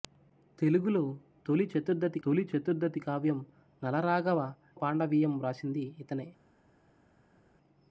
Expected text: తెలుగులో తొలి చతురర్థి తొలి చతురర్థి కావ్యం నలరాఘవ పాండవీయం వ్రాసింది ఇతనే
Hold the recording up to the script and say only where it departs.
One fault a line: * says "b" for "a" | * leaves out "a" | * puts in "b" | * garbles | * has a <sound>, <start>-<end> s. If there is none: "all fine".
all fine